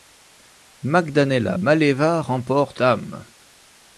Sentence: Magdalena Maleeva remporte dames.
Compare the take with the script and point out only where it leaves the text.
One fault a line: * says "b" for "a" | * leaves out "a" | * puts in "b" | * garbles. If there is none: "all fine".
all fine